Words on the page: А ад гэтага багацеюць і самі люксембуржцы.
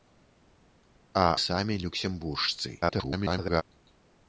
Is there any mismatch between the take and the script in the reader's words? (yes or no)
yes